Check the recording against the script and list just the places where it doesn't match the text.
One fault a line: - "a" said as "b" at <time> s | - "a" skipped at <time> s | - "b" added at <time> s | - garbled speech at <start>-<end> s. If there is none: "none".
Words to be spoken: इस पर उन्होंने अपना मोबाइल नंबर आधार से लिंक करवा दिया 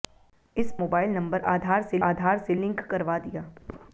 - "पर उन्होंने अपना मोबाइल नंबर" said as "मोबाइल नंबर आधार से" at 0.8 s